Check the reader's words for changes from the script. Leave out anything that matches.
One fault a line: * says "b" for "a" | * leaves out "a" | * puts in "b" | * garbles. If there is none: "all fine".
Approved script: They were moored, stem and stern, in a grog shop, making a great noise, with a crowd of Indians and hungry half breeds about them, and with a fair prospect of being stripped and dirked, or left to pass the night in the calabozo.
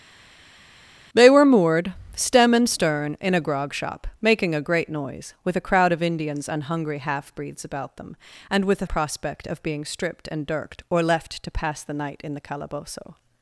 * leaves out "fair"